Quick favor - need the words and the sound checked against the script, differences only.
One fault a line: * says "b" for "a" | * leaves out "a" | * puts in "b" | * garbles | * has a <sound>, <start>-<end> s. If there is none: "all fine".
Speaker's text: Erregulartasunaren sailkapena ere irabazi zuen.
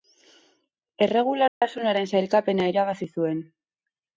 * has a dropout, 1.5-1.6 s
* leaves out "ere"